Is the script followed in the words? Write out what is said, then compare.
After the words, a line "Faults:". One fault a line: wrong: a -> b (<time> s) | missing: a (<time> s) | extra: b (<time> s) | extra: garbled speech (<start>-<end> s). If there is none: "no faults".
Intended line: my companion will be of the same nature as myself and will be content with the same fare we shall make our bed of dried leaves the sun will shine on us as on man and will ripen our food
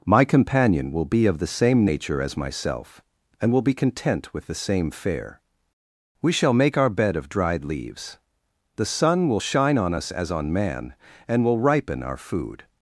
my companion will be of the same nature as myself and will be content with the same fare we shall make our bed of dried leaves the sun will shine on us as on man and will ripen our food
Faults:
no faults